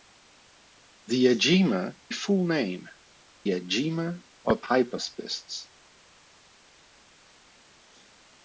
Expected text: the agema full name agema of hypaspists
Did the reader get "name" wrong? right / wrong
right